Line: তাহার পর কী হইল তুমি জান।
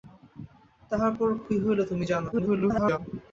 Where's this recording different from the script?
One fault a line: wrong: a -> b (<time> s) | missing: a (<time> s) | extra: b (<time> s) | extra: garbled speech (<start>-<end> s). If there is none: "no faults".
extra: garbled speech (2.3-3.0 s)